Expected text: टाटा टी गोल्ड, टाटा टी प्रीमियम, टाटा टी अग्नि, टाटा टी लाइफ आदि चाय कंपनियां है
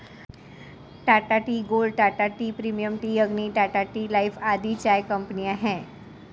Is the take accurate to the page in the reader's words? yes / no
no